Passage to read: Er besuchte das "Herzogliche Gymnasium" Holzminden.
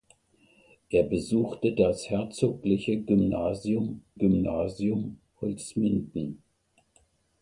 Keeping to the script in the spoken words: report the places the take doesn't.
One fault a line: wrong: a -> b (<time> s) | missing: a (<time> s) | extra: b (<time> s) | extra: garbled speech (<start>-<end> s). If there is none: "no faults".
extra: Gymnasium (4.2 s)